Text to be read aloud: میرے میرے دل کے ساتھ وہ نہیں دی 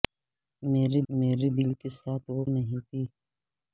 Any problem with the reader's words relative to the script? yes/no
no